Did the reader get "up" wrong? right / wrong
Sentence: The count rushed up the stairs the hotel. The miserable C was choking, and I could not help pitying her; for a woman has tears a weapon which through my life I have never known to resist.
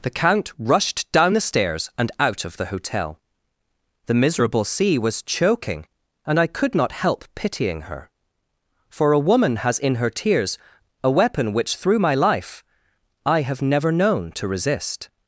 wrong